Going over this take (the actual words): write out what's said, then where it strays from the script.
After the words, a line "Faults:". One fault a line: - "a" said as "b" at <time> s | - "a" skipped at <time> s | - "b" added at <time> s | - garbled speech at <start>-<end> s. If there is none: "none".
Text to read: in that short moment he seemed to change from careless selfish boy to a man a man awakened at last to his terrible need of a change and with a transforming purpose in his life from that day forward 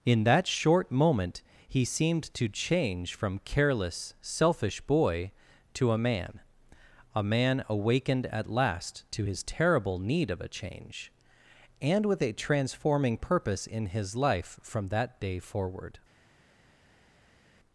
in that short moment he seemed to change from careless selfish boy to a man a man awakened at last to his terrible need of a change and with a transforming purpose in his life from that day forward
Faults:
none